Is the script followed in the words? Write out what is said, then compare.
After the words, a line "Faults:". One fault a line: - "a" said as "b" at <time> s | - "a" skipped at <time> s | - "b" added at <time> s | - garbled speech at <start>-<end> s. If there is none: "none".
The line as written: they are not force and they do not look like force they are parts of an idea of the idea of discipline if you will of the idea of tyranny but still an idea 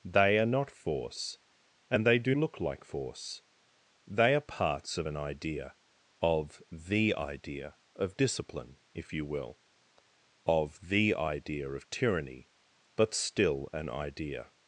they are not force and they do look like force they are parts of an idea of the idea of discipline if you will of the idea of tyranny but still an idea
Faults:
- "not" skipped at 2.3 s